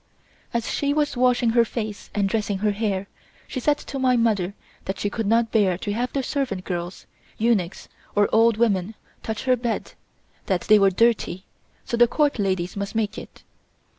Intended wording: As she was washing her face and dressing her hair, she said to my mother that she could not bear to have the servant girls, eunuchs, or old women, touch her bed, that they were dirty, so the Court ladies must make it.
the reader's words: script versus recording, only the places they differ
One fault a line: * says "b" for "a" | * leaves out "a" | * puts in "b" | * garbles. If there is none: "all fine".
all fine